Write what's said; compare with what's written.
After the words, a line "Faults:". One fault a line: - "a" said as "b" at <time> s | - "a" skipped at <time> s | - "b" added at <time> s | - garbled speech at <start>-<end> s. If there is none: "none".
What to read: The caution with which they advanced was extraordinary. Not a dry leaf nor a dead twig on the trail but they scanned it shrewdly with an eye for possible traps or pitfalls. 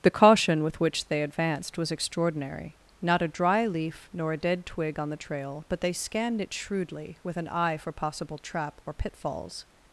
The caution with which they advanced was extraordinary. Not a dry leaf nor a dead twig on the trail but they scanned it shrewdly with an eye for possible trap or pitfalls.
Faults:
- "traps" said as "trap" at 8.4 s